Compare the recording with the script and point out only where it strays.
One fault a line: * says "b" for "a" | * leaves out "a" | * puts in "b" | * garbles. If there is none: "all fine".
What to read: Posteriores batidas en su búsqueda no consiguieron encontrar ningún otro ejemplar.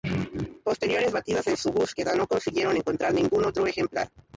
all fine